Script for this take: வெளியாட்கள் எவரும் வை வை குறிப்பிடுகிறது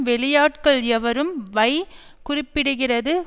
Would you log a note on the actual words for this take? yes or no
yes